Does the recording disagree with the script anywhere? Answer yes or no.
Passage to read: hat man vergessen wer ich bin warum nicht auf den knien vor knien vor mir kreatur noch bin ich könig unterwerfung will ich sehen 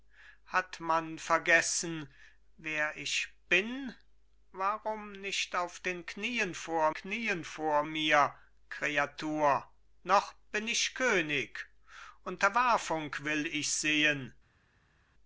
no